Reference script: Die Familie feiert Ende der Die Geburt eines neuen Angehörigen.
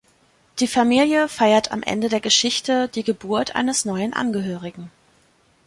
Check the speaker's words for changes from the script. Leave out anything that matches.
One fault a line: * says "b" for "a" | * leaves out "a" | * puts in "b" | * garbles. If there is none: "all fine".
* puts in "am"
* puts in "Geschichte"